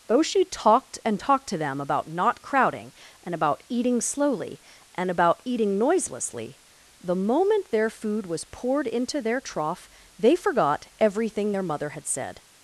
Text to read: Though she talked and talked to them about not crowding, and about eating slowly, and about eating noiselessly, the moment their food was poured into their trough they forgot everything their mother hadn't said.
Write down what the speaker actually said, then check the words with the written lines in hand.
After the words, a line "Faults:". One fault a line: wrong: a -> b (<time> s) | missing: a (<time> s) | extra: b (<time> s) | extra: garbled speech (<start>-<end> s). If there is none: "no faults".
Though she talked and talked to them about not crowding, and about eating slowly, and about eating noiselessly, the moment their food was poured into their trough they forgot everything their mother had said.
Faults:
wrong: hadn't -> had (11.9 s)